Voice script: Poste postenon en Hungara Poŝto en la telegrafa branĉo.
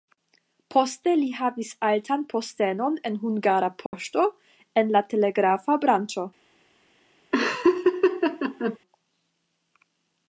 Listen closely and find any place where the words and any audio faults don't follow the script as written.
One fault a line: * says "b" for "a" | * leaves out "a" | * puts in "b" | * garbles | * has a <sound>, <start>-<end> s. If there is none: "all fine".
* puts in "li havis altan"
* has a dropout, 3.9-3.9 s
* has a laugh, 7.3-8.8 s